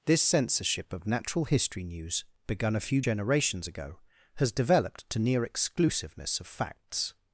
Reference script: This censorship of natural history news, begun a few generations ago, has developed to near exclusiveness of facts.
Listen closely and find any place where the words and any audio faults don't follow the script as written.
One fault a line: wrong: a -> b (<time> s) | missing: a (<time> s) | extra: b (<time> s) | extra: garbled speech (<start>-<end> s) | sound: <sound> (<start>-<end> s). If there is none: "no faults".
no faults